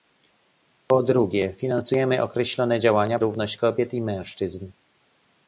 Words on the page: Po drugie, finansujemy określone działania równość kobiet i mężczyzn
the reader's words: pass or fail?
pass